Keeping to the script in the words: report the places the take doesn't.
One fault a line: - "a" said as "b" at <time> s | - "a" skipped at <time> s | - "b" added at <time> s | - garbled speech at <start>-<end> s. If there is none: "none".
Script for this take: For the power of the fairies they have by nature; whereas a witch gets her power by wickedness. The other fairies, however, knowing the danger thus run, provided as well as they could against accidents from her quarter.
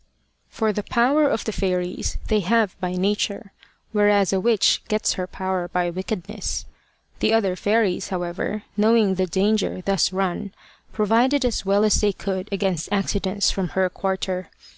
none